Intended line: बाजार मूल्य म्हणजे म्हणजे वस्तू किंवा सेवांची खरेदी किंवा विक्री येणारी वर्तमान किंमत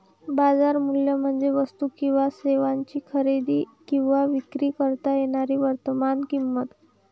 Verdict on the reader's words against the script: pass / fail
fail